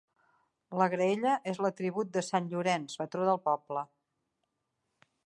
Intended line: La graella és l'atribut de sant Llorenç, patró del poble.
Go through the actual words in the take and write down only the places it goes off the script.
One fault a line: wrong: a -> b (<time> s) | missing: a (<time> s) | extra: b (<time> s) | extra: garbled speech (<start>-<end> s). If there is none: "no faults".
no faults